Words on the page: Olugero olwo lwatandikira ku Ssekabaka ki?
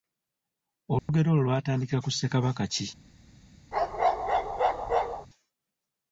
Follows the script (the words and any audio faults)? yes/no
no